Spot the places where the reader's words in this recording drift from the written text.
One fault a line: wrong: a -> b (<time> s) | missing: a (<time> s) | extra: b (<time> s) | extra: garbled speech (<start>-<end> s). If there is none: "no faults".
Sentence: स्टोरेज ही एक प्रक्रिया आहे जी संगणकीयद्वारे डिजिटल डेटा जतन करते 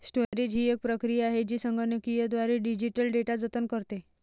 no faults